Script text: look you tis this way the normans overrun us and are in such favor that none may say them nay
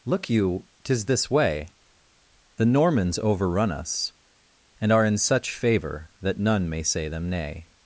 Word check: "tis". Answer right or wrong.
right